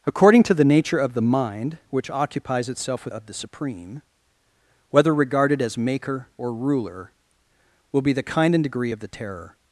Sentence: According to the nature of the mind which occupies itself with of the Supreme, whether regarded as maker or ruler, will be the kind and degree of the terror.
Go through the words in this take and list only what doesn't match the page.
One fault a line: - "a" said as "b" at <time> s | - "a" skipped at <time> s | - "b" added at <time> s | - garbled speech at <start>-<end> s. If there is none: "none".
none